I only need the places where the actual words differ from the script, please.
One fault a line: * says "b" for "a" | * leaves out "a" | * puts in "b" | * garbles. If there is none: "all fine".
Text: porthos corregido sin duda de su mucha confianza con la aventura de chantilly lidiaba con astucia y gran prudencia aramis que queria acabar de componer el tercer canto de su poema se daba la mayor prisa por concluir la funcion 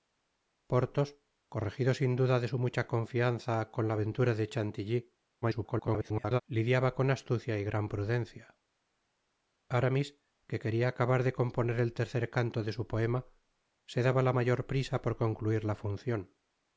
* garbles